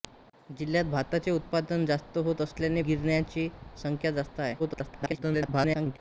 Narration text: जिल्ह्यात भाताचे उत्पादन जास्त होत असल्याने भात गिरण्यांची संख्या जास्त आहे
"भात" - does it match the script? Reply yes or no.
no